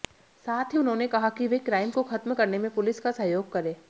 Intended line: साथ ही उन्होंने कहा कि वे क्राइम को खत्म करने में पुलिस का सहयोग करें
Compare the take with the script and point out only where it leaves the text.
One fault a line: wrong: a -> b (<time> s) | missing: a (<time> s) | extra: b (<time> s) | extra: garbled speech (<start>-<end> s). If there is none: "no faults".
no faults